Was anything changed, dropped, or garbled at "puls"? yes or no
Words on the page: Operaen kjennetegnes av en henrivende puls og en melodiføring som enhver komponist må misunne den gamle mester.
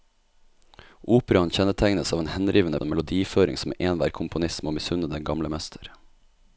yes